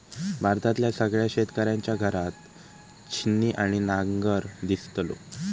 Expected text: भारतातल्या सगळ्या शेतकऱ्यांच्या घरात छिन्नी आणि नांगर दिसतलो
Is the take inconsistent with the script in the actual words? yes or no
no